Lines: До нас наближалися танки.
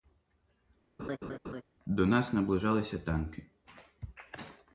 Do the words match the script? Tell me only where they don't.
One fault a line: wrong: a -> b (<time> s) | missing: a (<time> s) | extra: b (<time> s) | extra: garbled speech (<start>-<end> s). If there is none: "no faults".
no faults